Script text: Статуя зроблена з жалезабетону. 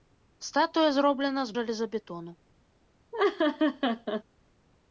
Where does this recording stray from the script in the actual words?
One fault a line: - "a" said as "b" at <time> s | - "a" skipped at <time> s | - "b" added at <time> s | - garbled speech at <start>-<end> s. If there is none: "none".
none